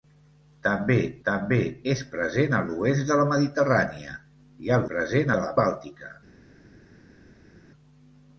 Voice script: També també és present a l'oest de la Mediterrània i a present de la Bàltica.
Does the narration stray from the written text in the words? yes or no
no